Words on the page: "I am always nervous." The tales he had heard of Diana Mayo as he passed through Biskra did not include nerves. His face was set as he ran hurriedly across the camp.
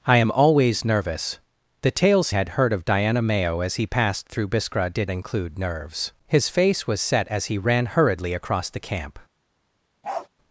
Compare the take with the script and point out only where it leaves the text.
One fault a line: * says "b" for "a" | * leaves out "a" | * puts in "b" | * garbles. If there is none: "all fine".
* leaves out "he"
* leaves out "not"